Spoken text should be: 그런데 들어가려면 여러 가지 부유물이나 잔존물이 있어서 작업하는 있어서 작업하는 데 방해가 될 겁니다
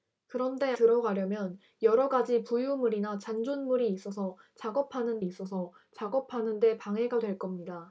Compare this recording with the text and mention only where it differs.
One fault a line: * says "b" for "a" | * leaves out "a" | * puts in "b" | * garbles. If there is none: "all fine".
all fine